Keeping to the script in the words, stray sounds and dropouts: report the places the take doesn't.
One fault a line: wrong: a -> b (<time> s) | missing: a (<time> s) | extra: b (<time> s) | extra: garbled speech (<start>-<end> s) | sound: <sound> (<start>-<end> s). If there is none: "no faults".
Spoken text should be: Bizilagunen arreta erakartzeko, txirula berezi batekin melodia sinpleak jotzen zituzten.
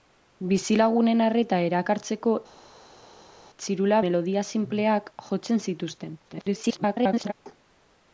missing: berezi batekin (4.0 s)
extra: garbled speech (6.2-7.3 s)